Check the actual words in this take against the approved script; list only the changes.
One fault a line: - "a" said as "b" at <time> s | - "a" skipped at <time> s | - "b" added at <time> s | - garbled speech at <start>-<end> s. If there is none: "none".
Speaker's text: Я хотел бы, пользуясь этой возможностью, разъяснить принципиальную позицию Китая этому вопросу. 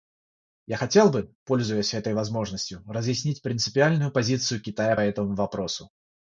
none